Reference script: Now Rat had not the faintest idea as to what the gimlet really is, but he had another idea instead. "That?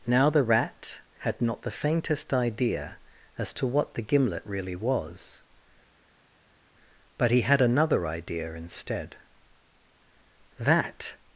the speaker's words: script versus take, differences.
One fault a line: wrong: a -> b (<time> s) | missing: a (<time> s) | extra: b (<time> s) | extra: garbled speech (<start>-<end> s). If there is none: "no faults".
extra: the (0.3 s)
wrong: is -> was (4.8 s)